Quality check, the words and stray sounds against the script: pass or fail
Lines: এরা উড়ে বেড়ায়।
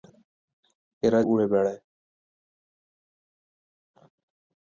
pass